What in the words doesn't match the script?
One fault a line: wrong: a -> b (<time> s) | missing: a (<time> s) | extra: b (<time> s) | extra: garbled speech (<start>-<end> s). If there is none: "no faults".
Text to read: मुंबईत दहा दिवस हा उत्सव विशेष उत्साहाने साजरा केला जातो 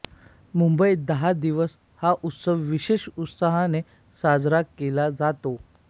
no faults